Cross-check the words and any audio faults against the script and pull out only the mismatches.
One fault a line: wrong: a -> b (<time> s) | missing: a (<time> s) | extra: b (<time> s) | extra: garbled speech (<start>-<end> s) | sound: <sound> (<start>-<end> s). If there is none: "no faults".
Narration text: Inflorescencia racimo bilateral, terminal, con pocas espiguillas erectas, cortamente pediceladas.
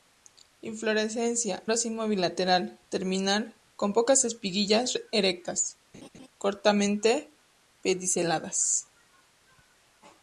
sound: laugh (5.9-6.3 s)